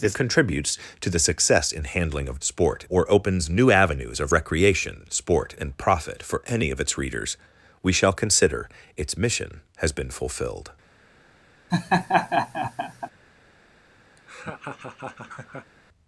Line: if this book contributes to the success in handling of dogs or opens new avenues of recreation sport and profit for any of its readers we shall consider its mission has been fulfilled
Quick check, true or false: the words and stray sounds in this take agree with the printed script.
false